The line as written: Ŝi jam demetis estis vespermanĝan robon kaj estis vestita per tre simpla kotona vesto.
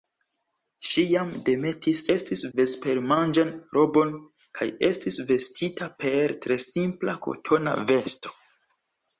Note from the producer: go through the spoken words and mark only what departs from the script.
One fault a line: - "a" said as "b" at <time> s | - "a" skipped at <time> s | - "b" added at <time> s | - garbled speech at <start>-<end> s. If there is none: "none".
none